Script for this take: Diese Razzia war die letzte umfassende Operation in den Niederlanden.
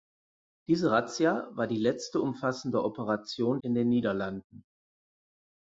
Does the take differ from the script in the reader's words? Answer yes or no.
no